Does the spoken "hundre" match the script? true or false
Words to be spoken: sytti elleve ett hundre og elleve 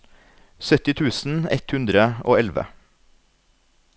true